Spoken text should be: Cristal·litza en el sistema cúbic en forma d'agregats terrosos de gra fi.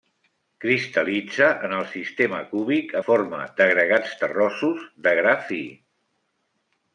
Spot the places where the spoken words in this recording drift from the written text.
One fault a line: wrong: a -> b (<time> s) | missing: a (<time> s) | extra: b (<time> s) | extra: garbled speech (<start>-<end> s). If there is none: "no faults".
missing: en (3.0 s)